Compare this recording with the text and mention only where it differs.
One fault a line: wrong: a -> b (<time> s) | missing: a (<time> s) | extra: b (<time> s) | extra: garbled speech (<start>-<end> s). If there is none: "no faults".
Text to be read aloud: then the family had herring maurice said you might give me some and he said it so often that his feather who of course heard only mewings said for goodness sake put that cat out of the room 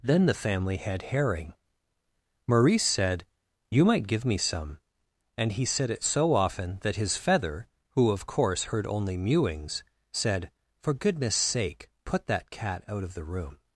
no faults